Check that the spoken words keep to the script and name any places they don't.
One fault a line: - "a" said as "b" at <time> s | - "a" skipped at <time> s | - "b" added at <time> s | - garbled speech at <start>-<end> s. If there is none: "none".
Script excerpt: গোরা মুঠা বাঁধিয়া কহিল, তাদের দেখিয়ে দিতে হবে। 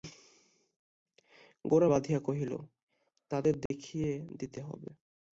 - "মুঠা" skipped at 1.9 s